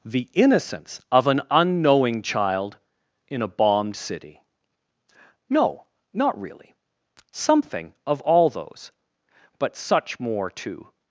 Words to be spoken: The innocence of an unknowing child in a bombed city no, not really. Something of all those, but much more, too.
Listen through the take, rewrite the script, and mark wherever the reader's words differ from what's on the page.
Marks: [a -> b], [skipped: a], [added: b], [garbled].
The innocence of an unknowing child in a bombed city no, not really. Something of all those, but [much -> such] more, too.